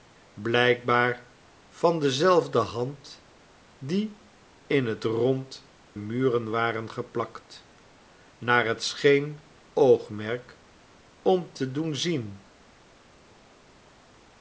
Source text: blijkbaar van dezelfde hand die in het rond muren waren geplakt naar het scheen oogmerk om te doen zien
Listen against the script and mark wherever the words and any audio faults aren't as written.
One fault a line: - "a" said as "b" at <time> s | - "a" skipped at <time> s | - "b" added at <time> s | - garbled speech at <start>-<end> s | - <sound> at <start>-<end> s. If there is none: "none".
none